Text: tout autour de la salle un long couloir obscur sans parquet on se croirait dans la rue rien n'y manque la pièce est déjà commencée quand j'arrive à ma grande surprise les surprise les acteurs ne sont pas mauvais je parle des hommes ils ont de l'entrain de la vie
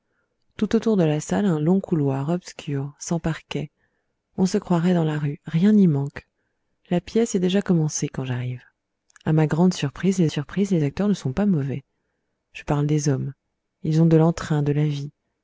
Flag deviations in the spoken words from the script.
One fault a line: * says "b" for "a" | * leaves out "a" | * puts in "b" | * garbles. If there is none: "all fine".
all fine